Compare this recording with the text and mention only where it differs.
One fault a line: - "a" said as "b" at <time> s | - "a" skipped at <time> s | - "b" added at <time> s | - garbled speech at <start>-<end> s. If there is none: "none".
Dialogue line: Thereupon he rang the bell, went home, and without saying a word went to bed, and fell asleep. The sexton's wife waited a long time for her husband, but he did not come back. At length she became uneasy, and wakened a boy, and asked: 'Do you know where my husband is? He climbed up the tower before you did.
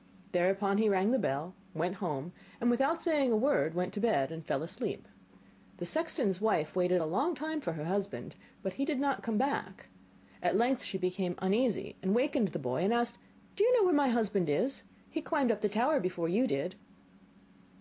- "a" said as "the" at 12.5 s